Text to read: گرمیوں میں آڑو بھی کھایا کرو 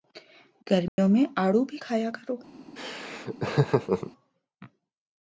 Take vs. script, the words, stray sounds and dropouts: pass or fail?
fail